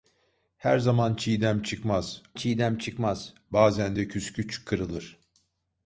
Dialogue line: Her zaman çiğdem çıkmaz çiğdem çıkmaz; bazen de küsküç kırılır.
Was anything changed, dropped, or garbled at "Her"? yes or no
no